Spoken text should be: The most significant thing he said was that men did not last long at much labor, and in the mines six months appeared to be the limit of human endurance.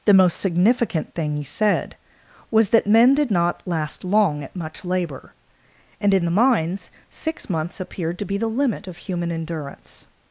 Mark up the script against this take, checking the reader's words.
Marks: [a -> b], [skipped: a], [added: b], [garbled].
The most significant thing he said was that men did not last long at much labor, and in the mines six months appeared to be the limit of human endurance.